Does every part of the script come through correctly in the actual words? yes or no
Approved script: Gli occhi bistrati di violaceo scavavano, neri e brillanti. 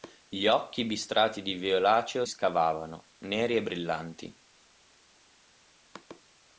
yes